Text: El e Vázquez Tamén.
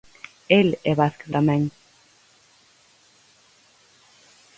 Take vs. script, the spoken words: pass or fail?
pass